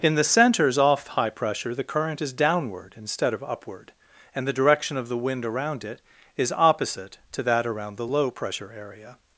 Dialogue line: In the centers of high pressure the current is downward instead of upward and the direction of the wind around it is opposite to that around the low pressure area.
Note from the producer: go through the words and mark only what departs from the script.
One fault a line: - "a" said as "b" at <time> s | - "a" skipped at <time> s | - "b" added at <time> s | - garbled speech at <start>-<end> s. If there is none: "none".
- "of" said as "off" at 0.8 s